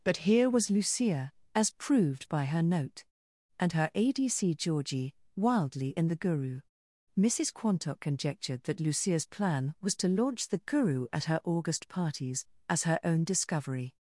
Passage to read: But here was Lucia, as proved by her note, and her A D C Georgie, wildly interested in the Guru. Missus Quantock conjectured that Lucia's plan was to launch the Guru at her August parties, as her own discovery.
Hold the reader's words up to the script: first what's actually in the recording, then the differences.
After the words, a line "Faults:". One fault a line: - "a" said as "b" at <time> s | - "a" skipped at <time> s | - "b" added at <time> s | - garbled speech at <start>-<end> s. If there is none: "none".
But here was Lucia, as proved by her note, and her A D C Georgie, wildly in the Guru. Missus Quantock conjectured that Lucia's plan was to launch the Guru at her August parties, as her own discovery.
Faults:
- "interested" skipped at 6.0 s